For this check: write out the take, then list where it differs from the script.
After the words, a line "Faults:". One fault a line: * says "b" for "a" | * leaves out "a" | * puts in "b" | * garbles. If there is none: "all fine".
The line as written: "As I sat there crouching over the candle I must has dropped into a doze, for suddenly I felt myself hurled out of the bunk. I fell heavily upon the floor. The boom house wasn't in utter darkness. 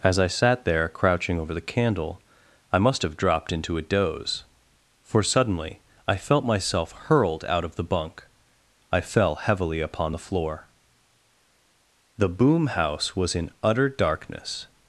"As I sat there crouching over the candle I must have dropped into a doze, for suddenly I felt myself hurled out of the bunk. I fell heavily upon the floor. The boom house was in utter darkness.
Faults:
* says "have" for "has"
* says "was" for "wasn't"